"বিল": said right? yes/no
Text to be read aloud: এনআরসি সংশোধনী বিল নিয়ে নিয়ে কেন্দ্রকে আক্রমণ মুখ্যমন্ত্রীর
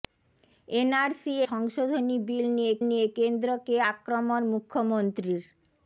yes